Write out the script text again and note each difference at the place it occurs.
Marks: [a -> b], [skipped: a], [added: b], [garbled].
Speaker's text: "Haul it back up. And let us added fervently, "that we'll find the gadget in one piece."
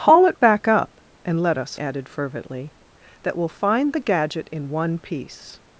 "Haul it back up. And let us added fervently, "that we'll find the gadget in one piece."